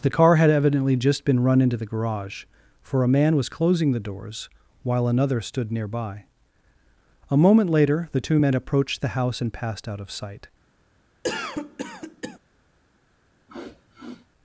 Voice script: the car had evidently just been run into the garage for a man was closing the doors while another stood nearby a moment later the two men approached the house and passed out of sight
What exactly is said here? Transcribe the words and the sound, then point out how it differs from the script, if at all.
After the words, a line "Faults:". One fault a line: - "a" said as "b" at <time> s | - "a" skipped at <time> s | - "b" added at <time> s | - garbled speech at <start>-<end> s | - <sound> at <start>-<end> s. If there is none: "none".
the car had evidently just been run into the garage for a man was closing the doors while another stood nearby a moment later the two men approached the house and passed out of sight
Faults:
- cough at 11.2-12.4 s
- sniff at 13.5-14.3 s